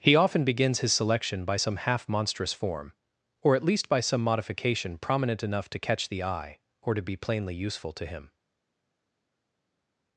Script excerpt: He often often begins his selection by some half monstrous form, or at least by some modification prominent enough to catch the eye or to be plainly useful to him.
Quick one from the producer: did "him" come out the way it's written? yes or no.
yes